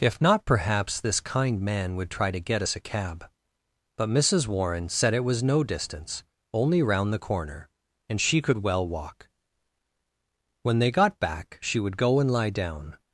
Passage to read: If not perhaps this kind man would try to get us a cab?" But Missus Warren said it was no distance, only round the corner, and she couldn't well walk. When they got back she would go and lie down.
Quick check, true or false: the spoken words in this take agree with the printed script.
false